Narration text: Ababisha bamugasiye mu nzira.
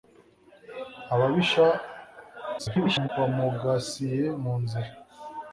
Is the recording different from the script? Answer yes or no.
yes